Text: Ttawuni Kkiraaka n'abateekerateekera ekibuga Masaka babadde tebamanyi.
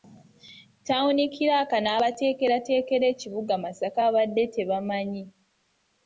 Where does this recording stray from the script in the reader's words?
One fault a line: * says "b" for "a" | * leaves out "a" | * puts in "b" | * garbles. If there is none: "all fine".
all fine